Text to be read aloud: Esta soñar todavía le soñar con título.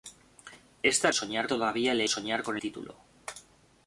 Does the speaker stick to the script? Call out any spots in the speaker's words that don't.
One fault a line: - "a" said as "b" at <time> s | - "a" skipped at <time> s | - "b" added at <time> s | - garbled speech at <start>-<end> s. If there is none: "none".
none